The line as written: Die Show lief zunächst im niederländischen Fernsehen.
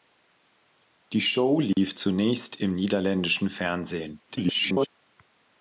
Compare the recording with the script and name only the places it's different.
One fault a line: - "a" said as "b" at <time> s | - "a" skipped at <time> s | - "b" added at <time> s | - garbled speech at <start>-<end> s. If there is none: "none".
- garbled speech at 4.3-4.9 s